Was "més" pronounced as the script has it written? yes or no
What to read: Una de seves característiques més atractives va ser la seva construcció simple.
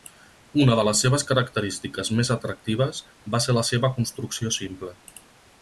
yes